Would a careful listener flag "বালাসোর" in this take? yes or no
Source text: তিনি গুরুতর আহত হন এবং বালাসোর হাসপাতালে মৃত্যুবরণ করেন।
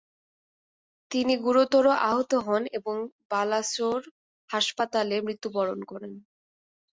no